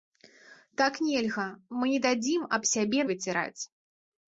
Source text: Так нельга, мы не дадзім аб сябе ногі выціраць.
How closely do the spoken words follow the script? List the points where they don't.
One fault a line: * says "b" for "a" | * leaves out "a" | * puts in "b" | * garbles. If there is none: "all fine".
* leaves out "ногі"